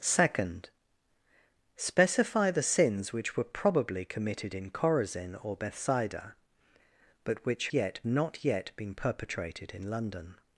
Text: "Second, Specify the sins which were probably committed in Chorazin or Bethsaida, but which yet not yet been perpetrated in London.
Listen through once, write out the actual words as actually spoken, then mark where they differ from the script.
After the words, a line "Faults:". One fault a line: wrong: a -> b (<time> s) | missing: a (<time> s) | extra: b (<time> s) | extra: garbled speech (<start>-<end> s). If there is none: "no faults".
"Second, Specify the sins which were probably committed in Chorazin or Bethsaida, but which yet not yet been perpetrated in London.
Faults:
no faults